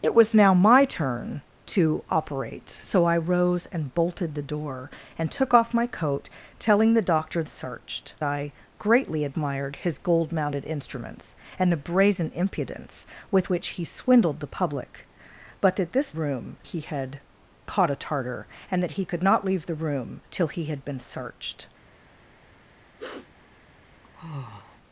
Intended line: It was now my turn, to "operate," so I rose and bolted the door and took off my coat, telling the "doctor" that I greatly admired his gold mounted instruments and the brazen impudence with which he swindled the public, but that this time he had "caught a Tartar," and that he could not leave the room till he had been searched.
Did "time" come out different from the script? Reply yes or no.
yes